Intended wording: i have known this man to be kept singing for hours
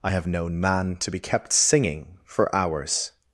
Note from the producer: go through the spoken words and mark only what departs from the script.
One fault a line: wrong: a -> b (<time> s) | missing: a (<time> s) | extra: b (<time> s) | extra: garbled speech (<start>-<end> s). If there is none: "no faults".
missing: this (0.6 s)